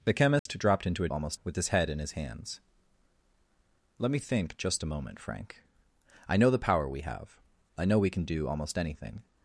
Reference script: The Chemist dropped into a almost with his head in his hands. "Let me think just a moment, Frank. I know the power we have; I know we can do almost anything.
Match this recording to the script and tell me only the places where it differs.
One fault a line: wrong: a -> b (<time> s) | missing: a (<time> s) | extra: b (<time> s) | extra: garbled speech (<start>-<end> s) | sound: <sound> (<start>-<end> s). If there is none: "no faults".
sound: dropout (0.4-0.5 s)